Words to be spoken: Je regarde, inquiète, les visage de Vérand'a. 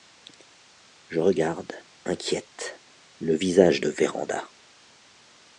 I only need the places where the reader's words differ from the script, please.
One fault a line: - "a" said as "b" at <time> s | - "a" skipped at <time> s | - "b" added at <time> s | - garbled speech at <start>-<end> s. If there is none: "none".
- "les" said as "le" at 3.2 s